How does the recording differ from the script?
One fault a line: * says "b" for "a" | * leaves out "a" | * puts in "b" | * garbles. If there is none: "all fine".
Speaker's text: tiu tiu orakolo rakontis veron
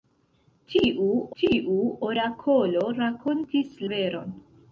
all fine